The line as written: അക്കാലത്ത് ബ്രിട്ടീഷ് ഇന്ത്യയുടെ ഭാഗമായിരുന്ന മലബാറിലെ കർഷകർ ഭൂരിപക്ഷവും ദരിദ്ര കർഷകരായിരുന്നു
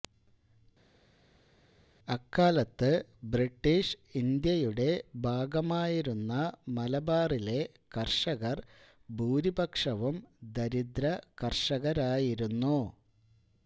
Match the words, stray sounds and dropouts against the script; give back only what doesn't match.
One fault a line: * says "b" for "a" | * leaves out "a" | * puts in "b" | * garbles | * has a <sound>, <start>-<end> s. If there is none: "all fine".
all fine